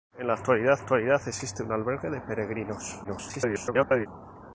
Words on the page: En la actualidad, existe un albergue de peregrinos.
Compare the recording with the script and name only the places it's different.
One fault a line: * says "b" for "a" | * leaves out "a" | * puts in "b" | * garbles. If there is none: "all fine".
* puts in "actualidad"
* garbles